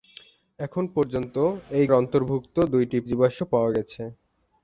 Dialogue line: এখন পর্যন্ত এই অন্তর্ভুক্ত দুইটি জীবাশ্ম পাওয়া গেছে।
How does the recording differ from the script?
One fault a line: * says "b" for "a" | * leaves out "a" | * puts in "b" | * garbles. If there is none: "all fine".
all fine